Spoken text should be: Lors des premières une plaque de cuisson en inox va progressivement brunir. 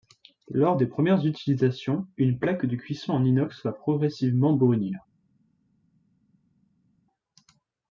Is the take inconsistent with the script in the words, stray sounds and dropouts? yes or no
yes